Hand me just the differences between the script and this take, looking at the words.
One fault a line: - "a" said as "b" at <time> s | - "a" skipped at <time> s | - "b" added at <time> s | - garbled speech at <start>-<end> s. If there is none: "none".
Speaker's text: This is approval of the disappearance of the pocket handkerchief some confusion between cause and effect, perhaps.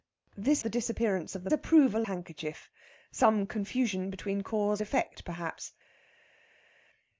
- "is approval of" skipped at 0.6 s
- "pocket" said as "approval" at 1.5 s
- "and" skipped at 4.8 s